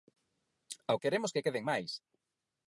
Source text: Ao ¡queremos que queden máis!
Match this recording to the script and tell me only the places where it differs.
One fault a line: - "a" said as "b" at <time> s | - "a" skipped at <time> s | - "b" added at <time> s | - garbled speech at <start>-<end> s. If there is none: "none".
none